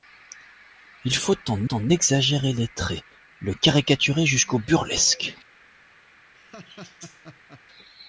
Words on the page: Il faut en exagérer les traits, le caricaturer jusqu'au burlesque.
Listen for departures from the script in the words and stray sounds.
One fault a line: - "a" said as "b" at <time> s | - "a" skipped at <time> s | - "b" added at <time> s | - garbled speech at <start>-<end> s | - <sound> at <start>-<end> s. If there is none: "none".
- "en" added at 1.7 s
- laugh at 6.3-7.6 s